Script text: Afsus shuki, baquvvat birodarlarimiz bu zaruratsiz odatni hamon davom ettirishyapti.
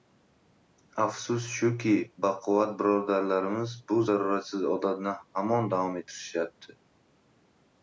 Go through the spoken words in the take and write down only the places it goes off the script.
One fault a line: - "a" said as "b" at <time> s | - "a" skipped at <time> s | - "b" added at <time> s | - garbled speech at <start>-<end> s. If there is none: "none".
none